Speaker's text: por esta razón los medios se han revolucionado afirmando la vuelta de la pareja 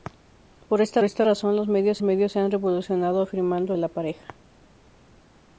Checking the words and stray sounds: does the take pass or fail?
fail